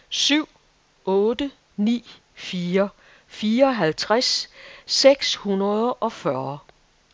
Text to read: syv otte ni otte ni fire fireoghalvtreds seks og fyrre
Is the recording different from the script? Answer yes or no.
yes